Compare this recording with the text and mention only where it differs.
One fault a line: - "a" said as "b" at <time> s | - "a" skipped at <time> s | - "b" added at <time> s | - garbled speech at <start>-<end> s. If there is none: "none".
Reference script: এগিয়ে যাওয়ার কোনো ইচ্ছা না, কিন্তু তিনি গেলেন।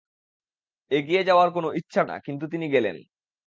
none